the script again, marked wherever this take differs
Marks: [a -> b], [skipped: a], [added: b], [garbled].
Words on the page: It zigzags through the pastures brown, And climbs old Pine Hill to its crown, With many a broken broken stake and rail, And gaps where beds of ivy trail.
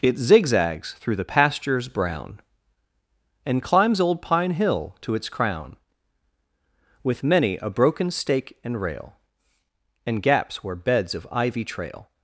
It zigzags through the pastures brown, And climbs old Pine Hill to its crown, With many a broken [skipped: broken] stake and rail, And gaps where beds of ivy trail.